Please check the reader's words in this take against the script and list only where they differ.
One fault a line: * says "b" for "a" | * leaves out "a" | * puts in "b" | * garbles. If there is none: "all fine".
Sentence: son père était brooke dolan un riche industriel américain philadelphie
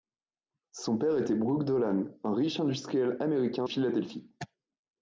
all fine